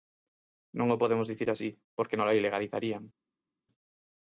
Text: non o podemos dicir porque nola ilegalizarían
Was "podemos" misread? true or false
false